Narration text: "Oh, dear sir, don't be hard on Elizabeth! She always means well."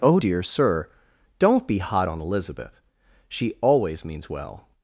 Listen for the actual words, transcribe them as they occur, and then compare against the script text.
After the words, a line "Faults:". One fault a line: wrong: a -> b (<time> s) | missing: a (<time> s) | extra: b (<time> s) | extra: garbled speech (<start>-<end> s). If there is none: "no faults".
"Oh, dear sir, don't be hot on Elizabeth! She always means well."
Faults:
wrong: hard -> hot (1.8 s)